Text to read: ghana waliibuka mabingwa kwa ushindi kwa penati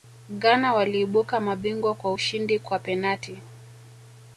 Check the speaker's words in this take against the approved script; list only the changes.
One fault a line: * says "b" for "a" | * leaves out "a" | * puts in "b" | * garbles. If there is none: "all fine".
all fine